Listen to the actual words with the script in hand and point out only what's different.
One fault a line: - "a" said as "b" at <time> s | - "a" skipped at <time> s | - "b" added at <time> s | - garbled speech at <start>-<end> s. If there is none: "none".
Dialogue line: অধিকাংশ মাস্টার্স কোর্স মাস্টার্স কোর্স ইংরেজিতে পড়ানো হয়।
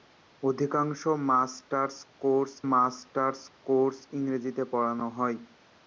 none